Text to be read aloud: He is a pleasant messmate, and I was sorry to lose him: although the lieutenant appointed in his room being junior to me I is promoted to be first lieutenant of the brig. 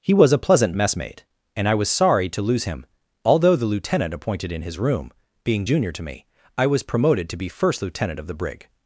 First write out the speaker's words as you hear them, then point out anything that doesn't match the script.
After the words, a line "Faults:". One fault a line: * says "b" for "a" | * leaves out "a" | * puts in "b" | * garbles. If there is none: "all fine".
He was a pleasant messmate, and I was sorry to lose him: although the lieutenant appointed in his room being junior to me I was promoted to be first lieutenant of the brig.
Faults:
* says "was" for "is"
* says "was" for "is"